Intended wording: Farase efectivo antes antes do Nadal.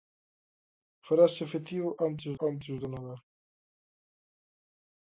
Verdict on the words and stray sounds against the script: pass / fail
pass